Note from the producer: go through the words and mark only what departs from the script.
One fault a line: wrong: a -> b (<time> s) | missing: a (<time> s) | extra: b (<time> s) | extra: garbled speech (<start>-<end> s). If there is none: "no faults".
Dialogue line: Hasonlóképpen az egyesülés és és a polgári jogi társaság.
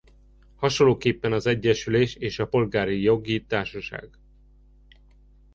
missing: és (2.4 s)